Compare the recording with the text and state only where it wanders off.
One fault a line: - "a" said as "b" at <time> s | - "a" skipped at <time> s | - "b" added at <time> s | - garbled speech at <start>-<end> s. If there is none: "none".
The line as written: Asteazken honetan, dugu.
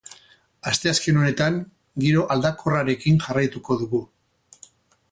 - "giro aldakorrarekin jarraituko" added at 2.0 s